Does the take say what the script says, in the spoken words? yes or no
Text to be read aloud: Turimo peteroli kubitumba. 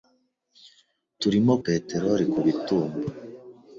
yes